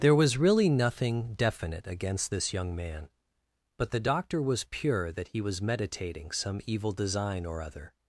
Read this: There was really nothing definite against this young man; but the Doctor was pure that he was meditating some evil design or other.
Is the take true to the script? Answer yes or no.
yes